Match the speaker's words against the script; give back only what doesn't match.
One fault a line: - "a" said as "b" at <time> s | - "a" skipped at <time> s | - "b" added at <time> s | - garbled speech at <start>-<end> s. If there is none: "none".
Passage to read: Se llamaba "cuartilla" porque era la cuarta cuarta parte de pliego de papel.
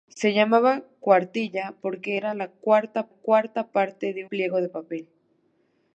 none